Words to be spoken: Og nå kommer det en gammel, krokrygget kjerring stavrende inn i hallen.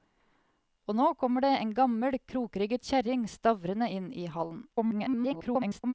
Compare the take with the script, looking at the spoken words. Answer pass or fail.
fail